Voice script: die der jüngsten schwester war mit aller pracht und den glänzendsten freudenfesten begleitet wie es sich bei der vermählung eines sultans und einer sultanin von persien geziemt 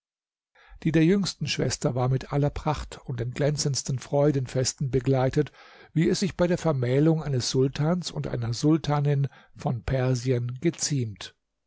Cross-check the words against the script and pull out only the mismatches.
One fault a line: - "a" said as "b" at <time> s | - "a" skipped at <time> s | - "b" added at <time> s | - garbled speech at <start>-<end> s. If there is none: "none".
none